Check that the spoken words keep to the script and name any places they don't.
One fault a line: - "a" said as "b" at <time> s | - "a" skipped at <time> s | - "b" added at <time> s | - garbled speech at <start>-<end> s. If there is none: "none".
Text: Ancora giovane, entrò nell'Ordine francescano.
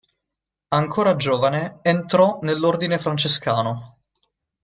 none